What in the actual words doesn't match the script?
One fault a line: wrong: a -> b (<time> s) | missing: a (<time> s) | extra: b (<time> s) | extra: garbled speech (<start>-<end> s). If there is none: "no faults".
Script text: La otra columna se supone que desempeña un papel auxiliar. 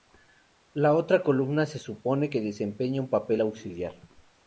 no faults